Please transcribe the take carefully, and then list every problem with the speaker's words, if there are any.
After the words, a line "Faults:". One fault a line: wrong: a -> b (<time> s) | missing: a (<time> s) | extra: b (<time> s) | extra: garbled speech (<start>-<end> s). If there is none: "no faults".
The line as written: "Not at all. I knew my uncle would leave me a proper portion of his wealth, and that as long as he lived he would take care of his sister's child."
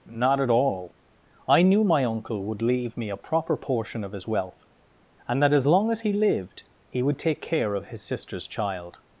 "Not at all. I knew my uncle would leave me a proper portion of his wealth, and that as long as he lived he would take care of his sister's child."
Faults:
no faults